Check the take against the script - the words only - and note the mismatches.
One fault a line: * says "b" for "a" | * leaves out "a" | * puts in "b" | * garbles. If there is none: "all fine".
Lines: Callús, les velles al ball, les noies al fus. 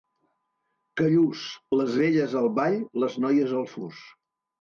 all fine